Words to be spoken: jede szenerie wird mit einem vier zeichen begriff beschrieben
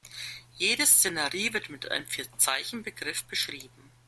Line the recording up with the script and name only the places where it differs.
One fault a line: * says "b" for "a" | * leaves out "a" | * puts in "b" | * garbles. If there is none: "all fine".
all fine